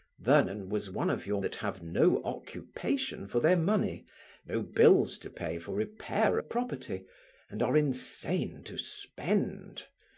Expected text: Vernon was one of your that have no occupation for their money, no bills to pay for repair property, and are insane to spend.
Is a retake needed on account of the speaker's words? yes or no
no